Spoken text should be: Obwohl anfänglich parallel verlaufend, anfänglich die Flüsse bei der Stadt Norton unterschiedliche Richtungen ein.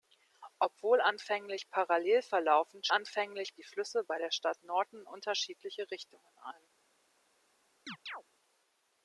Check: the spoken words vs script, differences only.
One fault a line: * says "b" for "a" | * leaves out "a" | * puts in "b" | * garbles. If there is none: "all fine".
all fine